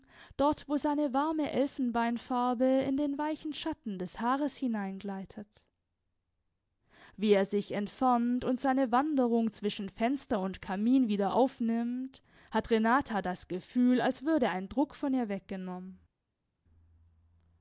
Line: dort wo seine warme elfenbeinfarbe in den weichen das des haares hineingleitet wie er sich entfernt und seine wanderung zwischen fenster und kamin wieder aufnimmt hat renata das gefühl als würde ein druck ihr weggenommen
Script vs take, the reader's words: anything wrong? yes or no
yes